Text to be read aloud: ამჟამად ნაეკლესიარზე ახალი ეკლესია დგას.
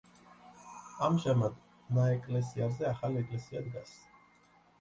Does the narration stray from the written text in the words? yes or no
no